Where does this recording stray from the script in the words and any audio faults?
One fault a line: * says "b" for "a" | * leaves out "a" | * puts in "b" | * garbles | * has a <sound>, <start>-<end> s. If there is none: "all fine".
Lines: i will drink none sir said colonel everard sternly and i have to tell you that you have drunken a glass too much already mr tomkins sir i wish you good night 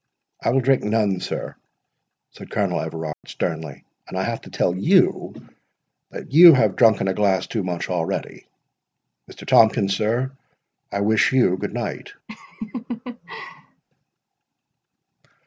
* has a dropout, 3.1-3.2 s
* has a laugh, 12.3-13.8 s